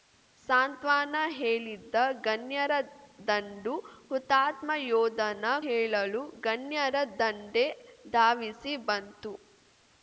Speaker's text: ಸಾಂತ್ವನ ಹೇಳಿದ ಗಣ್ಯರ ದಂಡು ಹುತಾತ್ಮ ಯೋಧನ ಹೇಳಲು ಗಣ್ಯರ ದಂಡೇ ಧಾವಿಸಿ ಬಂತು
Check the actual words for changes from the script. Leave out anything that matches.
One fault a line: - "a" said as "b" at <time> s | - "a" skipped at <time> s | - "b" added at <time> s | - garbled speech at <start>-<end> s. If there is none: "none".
none